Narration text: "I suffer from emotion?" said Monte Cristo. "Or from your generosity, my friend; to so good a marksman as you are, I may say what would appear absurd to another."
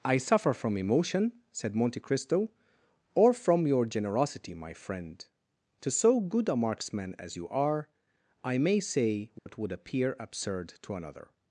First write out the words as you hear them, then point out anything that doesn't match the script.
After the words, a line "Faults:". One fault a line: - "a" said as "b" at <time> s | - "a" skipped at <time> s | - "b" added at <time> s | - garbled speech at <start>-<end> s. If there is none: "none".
"I suffer from emotion?" said Monte Cristo. "Or from your generosity, my friend; to so good a marksman as you are, I may say what would appear absurd to another."
Faults:
none